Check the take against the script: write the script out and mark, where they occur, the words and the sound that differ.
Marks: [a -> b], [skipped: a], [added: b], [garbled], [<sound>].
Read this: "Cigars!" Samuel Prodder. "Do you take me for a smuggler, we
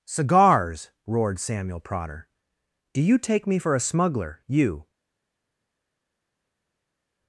"Cigars!" [added: roared] Samuel Prodder. "Do you take me for a smuggler, [we -> you]